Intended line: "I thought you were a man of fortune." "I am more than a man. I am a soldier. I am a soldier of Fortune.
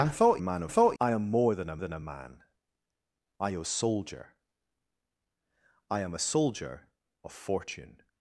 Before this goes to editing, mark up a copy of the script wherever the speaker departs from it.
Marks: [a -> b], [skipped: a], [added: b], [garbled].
"I thought [skipped: you were] a man of [fortune." -> thought] "I am more than a [added: than a] man. I am a soldier. I am a soldier of Fortune.